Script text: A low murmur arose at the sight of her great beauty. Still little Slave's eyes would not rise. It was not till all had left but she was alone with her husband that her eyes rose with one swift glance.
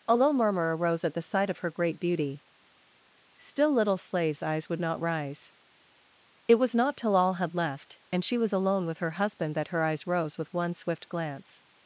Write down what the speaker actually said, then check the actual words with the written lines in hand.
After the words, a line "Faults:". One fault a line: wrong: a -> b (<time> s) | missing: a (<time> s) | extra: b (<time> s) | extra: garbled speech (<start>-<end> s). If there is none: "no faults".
A low murmur arose at the sight of her great beauty. Still little Slave's eyes would not rise. It was not till all had left and she was alone with her husband that her eyes rose with one swift glance.
Faults:
wrong: but -> and (8.1 s)